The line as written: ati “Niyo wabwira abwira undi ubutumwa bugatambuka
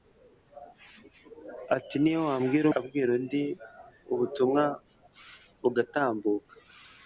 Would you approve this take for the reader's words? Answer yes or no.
yes